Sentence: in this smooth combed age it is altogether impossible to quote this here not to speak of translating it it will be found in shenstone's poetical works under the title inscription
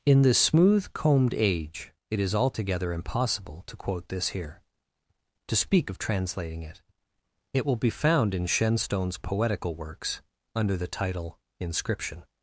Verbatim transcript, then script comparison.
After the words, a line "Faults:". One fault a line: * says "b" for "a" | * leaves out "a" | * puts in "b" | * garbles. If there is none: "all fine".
in this smooth combed age it is altogether impossible to quote this here to speak of translating it it will be found in shenstone's poetical works under the title inscription
Faults:
* leaves out "not"